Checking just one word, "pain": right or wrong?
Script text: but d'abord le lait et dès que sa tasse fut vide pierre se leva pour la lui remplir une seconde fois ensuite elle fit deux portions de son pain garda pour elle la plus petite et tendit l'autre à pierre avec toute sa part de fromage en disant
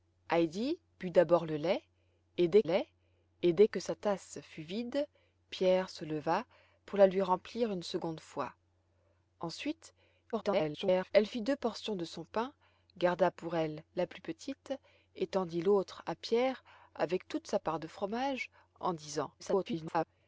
right